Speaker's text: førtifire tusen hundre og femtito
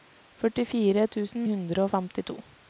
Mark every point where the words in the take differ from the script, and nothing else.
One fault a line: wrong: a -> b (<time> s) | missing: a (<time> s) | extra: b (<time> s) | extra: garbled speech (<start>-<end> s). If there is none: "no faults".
no faults